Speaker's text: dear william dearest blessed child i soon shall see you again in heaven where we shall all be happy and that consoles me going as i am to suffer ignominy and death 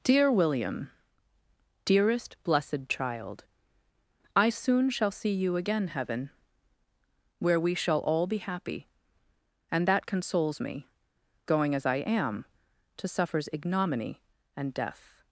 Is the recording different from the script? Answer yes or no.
yes